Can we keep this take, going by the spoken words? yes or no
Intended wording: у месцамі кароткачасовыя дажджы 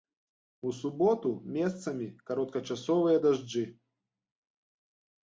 no